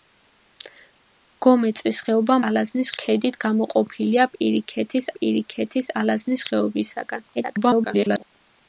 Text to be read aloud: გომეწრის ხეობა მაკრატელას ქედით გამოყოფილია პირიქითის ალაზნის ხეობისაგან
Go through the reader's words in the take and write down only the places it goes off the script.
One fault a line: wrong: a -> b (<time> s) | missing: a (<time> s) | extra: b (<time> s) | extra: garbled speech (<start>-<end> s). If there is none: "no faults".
wrong: მაკრატელას -> ალაზნის (2.5 s)
extra: პირიქითის (5.1 s)
extra: garbled speech (7.3-8.2 s)